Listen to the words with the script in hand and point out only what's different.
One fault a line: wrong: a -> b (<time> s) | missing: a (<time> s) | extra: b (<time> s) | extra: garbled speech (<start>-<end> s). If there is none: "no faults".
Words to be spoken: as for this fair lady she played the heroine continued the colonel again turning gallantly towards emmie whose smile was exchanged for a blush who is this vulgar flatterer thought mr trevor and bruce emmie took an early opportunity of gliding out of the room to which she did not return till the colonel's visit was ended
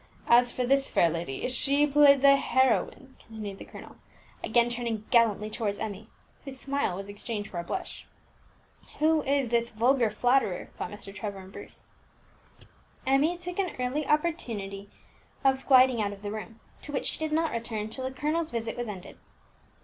no faults